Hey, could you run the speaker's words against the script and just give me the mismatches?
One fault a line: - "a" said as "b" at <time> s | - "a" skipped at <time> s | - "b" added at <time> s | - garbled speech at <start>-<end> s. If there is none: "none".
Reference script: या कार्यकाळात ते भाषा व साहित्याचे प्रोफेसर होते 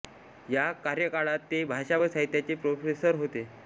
none